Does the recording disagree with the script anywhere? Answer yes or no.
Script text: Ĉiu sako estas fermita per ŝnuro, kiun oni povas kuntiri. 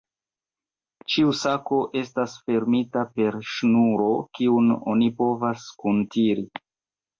no